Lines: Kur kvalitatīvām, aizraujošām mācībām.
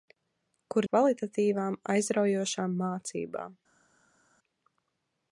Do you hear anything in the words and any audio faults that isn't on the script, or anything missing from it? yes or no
no